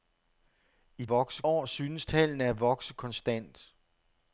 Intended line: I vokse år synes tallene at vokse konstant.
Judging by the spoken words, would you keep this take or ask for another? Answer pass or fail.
pass